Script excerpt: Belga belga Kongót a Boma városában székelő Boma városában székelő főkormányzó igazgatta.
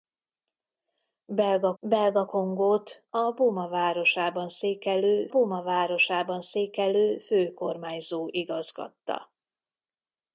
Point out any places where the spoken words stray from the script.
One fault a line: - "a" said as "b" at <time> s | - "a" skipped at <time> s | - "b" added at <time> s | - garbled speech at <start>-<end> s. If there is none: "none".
none